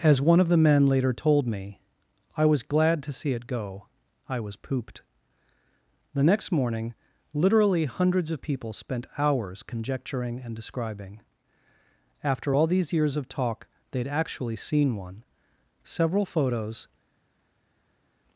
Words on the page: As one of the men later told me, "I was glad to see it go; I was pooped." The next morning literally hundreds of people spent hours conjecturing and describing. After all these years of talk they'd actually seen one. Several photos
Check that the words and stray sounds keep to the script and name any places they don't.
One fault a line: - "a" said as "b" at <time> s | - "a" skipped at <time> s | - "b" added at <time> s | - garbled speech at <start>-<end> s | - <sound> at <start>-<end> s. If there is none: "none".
none